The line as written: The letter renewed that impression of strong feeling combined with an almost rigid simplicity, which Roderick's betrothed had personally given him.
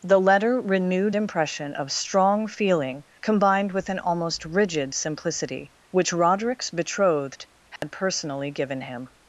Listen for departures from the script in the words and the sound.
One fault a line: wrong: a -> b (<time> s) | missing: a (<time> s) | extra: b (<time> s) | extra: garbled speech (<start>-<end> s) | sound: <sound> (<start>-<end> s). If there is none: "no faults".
missing: that (1.1 s)
sound: dropout (7.8-7.8 s)